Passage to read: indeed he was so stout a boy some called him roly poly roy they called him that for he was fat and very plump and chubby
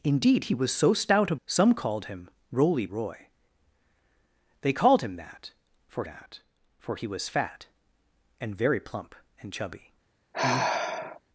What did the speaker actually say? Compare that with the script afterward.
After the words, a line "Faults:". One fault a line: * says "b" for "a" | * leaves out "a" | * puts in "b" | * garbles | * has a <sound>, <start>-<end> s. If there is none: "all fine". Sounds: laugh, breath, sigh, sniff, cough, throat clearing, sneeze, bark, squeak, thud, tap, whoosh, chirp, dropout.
indeed he was so stout a some called him roly roy they called him that for that for he was fat and very plump and chubby
Faults:
* leaves out "boy"
* leaves out "poly"
* puts in "that for"
* has a sigh, 10.3-11.2 s